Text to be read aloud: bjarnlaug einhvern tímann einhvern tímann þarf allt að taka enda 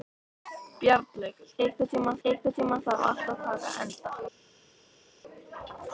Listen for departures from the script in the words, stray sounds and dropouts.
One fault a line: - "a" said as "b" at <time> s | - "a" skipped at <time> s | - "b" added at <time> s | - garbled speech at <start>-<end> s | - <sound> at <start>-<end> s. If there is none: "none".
none